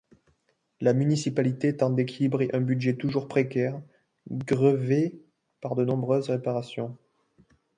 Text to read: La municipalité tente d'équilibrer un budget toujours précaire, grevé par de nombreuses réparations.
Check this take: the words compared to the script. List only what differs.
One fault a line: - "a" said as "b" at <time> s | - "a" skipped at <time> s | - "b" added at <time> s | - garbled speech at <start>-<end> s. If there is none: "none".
none